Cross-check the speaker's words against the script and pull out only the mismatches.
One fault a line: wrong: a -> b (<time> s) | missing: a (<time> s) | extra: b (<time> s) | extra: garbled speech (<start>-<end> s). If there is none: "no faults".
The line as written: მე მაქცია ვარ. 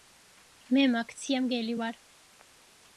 extra: მგელი (1.4 s)